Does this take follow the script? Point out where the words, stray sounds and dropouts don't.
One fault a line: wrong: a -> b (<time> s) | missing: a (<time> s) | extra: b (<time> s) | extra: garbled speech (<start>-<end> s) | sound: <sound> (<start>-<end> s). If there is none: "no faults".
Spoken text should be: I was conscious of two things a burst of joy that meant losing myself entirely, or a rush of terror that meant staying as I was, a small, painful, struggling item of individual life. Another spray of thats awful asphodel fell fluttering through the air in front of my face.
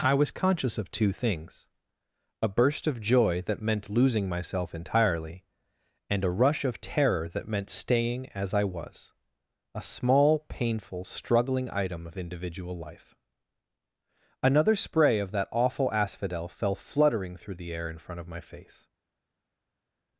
wrong: or -> and (6.1 s)
wrong: thats -> that (15.3 s)